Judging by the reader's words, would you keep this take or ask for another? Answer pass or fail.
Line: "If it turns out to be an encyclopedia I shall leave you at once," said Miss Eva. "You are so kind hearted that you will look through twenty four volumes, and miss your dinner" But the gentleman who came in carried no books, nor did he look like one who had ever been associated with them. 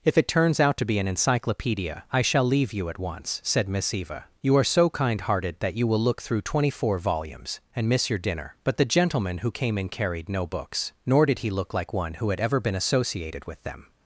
pass